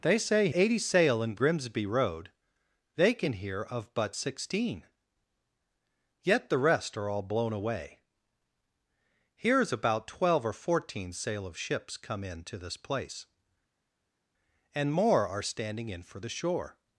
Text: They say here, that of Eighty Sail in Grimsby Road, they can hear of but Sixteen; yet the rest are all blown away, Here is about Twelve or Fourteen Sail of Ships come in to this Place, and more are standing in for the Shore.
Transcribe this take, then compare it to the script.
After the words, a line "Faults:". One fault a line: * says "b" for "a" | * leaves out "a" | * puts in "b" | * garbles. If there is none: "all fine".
They say Eighty Sail in Grimsby Road, they can hear of but Sixteen; yet the rest are all blown away, Here is about Twelve or Fourteen Sail of Ships come in to this Place, and more are standing in for the Shore.
Faults:
* leaves out "here that of"